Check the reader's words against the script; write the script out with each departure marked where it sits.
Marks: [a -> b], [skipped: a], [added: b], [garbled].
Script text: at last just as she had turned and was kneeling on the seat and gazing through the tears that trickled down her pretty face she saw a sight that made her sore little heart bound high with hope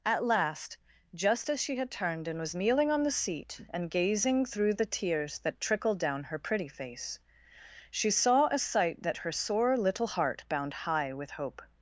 at last just as she had turned and was kneeling on the seat and gazing through the tears that trickled down her pretty face she saw a sight that [skipped: made] her sore little heart bound high with hope